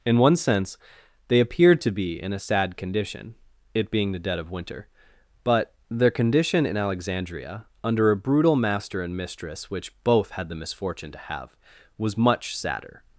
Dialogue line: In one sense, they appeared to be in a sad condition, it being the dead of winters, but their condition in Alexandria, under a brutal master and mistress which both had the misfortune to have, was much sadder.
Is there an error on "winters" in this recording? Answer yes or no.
yes